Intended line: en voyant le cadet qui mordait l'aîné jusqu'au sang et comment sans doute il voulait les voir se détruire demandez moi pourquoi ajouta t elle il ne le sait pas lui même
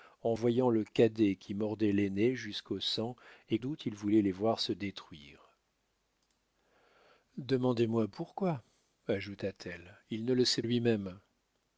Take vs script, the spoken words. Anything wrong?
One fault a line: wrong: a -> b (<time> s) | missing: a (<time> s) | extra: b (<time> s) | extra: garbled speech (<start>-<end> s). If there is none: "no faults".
missing: comment sans (3.6 s)
missing: pas (10.6 s)